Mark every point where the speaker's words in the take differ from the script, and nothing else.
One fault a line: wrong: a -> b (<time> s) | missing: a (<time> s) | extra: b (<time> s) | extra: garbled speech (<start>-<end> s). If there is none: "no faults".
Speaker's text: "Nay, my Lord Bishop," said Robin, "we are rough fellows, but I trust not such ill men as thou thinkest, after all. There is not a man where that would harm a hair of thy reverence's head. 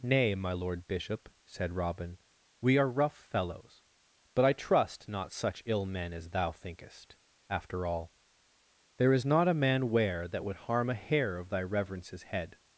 no faults